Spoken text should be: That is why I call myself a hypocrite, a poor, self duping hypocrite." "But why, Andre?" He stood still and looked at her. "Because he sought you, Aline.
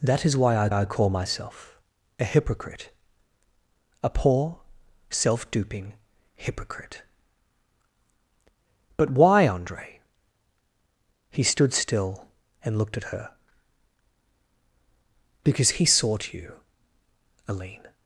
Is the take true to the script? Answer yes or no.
no